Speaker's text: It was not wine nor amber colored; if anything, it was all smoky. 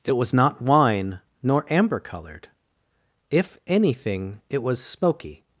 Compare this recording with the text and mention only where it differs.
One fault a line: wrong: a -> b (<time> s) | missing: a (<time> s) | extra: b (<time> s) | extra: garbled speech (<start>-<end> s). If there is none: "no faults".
missing: all (4.8 s)